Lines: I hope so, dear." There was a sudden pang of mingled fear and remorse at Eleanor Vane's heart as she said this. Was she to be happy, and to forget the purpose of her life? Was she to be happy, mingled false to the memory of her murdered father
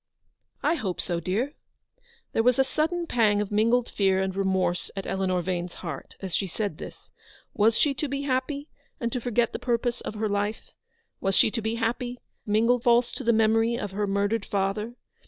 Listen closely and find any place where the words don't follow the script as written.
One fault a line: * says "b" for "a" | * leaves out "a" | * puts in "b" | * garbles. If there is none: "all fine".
all fine